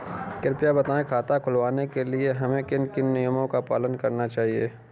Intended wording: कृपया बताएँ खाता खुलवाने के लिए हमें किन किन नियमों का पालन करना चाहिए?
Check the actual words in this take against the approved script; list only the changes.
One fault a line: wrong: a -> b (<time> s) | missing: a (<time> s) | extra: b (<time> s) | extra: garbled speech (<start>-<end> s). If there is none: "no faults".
no faults